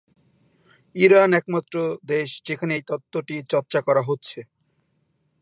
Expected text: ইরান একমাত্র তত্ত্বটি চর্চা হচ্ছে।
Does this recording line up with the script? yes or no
no